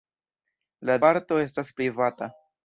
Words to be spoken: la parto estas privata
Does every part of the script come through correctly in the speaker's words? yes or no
yes